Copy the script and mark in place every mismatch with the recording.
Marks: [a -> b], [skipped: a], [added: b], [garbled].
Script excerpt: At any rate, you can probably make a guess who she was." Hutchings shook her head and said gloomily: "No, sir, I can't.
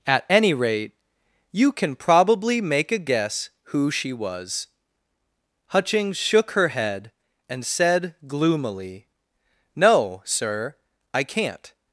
At any rate, you can probably make a guess who she was." Hutchings shook her head and said gloomily: "No, sir, I can't.